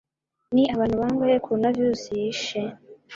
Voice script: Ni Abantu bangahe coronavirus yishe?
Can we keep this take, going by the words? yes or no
yes